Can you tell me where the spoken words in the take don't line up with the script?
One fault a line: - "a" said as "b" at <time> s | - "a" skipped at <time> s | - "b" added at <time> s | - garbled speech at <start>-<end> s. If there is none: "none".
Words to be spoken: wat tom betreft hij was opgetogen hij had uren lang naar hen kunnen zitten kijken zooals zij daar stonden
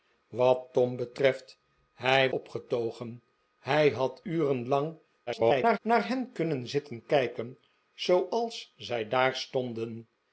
- "was" skipped at 2.3 s
- garbled speech at 5.3-5.8 s